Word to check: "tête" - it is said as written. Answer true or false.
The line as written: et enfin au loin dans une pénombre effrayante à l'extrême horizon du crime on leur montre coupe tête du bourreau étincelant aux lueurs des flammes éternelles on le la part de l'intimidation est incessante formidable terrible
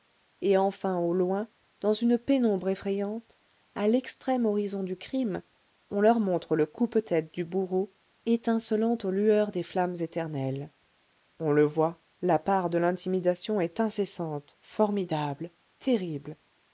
true